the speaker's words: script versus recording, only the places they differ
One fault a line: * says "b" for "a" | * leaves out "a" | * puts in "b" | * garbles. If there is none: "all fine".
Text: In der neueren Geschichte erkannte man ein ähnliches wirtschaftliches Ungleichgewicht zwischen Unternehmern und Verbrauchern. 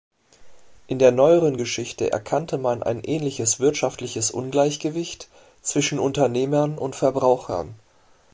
all fine